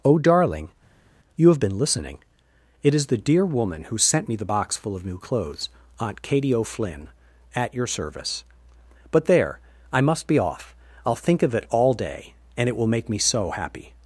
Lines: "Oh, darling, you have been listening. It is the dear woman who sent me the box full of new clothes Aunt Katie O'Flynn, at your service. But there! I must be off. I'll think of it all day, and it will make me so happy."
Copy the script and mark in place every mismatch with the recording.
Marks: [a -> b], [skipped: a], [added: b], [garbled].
"Oh, darling, you have been listening. It is the dear woman who sent me the box full of new clothes Aunt Katie O'Flynn, at your service. But there! I must be off. I'll think of it all day, and it will make me so happy."